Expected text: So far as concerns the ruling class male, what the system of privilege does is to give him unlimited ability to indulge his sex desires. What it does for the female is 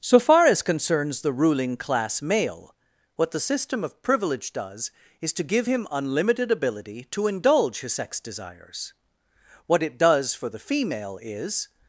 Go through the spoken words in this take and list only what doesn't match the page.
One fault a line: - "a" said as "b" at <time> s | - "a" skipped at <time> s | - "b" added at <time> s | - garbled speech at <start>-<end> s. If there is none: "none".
none